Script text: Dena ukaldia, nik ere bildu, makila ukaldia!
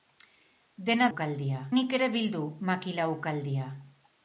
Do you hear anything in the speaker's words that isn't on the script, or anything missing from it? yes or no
no